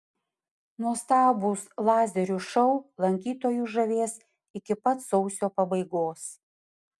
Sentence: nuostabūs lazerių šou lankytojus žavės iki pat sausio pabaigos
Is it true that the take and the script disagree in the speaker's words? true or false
false